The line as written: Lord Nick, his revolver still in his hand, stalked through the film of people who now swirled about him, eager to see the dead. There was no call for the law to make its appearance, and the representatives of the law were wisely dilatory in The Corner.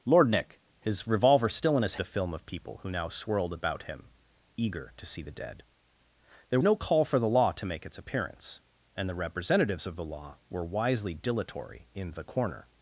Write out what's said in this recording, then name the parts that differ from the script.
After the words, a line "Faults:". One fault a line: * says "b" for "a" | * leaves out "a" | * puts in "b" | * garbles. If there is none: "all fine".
Lord Nick, his revolver still in his the film of people who now swirled about him, eager to see the dead. There no call for the law to make its appearance, and the representatives of the law were wisely dilatory in The Corner.
Faults:
* leaves out "hand stalked through"
* leaves out "was"